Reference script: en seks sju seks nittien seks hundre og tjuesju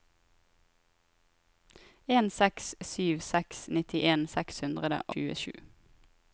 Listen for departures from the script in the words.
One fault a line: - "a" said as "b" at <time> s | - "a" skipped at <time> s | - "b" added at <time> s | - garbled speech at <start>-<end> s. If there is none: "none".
- "og" skipped at 5.0 s